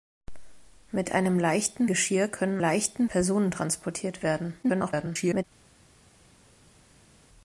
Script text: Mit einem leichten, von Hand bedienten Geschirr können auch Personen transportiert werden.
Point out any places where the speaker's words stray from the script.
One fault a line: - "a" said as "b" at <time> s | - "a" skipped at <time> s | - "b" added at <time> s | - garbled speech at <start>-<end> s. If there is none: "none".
- "von Hand bedienten" skipped at 1.9 s
- "auch" said as "leichten" at 2.6 s
- garbled speech at 4.6-5.4 s